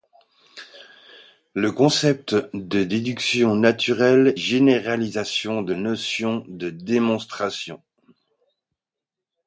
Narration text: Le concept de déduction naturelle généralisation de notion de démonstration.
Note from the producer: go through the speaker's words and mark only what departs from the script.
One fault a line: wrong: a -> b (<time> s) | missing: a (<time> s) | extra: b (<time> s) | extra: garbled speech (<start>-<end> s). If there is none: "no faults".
no faults